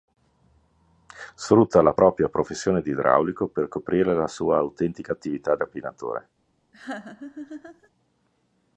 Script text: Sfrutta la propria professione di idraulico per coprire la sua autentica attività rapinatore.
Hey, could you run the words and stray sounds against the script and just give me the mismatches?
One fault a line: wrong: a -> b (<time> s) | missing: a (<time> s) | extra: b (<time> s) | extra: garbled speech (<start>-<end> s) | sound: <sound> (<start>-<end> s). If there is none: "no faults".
sound: laugh (6.7-7.9 s)